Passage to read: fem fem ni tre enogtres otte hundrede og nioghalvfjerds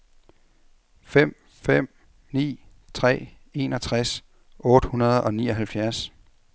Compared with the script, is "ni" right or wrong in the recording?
right